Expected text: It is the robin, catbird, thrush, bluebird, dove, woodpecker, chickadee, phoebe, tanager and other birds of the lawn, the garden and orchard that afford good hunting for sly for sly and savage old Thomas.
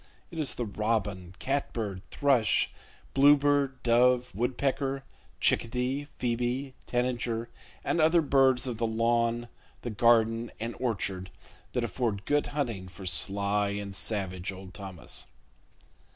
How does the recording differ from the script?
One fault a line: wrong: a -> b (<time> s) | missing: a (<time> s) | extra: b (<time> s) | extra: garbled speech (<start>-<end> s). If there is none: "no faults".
missing: for sly (13.7 s)